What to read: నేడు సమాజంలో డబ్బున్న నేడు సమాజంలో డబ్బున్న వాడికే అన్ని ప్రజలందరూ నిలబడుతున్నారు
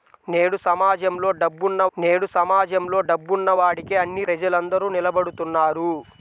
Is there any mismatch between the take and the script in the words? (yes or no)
no